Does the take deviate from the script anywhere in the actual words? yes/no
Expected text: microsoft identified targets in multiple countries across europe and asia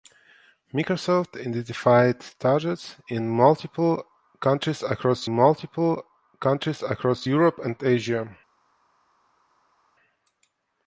yes